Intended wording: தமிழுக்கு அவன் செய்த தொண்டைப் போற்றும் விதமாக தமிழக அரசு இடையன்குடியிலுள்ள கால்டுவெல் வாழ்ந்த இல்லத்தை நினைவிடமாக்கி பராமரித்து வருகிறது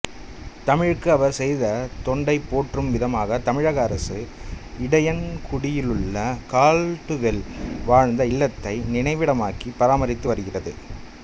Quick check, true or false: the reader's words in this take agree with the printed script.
false